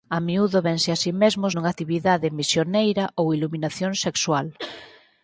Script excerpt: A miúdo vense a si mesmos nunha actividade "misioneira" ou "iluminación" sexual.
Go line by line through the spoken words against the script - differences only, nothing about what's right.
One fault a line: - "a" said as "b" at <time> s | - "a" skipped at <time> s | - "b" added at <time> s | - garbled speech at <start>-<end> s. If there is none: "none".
none